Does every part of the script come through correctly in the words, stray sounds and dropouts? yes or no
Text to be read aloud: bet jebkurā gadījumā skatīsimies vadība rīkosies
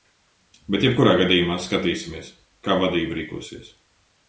no